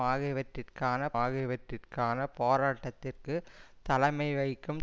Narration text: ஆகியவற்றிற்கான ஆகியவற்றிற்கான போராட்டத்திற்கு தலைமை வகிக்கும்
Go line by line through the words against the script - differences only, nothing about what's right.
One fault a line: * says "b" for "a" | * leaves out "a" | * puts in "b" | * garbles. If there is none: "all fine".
all fine